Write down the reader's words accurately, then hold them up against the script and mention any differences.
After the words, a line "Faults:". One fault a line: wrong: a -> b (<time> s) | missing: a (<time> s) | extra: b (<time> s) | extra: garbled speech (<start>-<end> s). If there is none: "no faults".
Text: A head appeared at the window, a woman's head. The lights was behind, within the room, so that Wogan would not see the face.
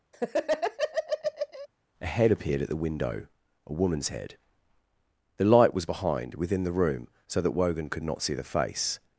A head appeared at the window, a woman's head. The light was behind, within the room, so that Wogan could not see the face.
Faults:
wrong: lights -> light (5.4 s)
wrong: would -> could (7.9 s)